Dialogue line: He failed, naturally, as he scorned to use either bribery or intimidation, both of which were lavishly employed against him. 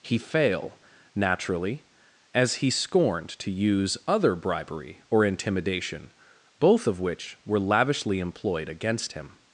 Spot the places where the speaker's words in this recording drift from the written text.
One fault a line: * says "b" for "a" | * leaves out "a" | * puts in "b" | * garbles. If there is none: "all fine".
* says "fail" for "failed"
* says "other" for "either"